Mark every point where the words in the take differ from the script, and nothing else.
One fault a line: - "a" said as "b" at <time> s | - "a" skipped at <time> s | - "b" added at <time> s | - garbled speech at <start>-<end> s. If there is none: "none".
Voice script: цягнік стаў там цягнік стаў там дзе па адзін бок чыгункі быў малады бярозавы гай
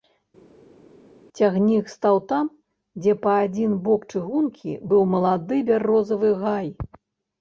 - "цягнік стаў там" skipped at 2.5 s